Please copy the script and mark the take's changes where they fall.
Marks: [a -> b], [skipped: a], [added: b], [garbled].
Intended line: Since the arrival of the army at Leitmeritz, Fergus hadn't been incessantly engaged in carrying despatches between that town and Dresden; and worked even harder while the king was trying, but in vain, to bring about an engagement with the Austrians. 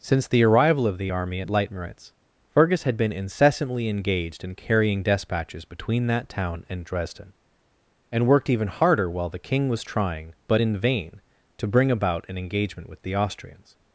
Since the arrival of the army at Leitmeritz, Fergus [hadn't -> had] been incessantly engaged in carrying despatches between that town and Dresden; and worked even harder while the king was trying, but in vain, to bring about an engagement with the Austrians.